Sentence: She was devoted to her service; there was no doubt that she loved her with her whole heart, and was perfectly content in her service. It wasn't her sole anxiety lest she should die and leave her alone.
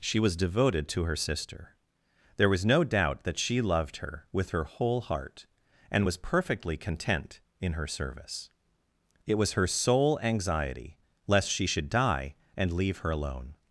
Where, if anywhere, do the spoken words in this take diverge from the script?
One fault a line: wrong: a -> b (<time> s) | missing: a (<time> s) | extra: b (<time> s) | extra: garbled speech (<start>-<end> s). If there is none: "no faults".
wrong: service -> sister (1.1 s)
wrong: wasn't -> was (9.4 s)